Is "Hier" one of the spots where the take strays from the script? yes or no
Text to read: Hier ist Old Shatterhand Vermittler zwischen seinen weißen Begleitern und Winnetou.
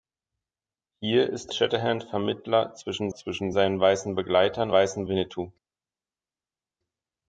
no